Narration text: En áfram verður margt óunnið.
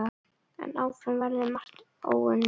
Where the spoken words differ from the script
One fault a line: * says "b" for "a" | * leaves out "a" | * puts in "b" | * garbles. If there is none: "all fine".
all fine